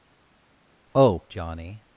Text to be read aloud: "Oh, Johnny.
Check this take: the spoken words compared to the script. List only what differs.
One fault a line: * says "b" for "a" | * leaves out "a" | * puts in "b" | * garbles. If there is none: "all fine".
all fine